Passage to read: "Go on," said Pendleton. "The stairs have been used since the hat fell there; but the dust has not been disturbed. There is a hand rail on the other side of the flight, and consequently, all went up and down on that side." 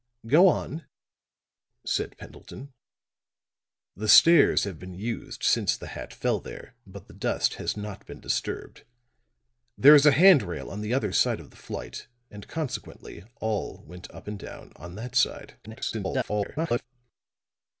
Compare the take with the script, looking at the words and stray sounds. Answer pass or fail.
fail